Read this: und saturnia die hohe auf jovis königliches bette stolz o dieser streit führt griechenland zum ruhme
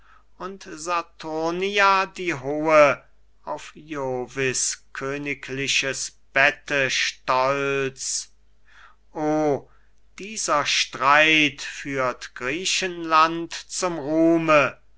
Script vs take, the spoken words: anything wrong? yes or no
no